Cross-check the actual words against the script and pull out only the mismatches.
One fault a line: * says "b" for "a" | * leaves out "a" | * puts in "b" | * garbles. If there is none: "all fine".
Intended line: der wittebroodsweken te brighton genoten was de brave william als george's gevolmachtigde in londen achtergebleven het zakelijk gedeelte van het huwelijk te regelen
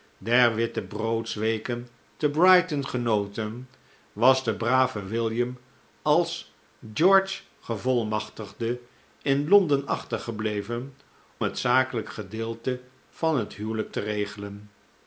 all fine